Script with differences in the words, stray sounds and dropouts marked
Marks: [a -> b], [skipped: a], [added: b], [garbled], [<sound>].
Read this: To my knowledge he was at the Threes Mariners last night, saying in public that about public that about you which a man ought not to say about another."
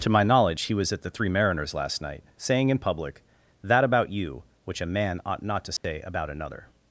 To my knowledge he was at the [Threes -> Three] Mariners last night, saying in public that about [skipped: public that about] you which a man ought not to say [dropout] about another."